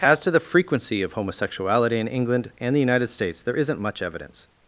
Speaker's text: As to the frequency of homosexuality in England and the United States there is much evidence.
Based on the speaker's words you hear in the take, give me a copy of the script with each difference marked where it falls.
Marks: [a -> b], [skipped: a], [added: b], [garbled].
As to the frequency of homosexuality in England and the United States there [is -> isn't] much evidence.